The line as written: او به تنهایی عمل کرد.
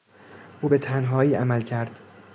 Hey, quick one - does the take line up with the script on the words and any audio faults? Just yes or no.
yes